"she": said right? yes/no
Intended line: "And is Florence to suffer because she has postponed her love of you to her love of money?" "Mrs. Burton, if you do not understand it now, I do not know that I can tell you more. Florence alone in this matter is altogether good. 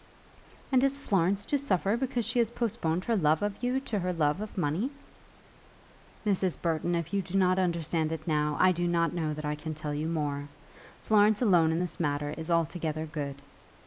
yes